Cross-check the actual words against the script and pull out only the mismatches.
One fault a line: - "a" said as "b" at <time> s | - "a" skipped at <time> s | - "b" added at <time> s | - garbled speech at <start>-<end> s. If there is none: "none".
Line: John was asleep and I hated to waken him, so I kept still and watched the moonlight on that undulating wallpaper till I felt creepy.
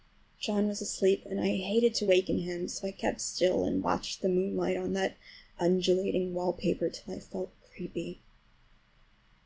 none